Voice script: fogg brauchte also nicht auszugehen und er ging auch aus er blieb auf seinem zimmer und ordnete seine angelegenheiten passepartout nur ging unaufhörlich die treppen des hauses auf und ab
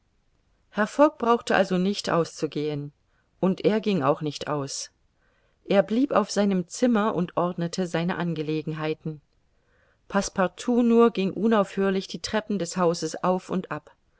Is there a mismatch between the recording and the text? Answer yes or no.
yes